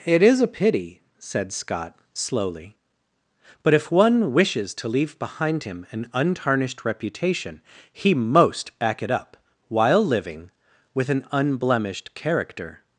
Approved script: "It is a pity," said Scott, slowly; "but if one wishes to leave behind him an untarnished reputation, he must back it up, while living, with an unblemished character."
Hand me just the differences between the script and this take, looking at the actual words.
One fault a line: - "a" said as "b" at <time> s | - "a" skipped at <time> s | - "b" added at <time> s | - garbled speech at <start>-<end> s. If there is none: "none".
- "must" said as "most" at 8.1 s